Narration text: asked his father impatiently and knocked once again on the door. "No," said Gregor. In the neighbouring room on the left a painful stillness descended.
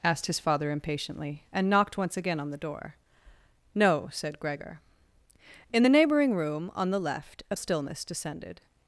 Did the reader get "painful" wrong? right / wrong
wrong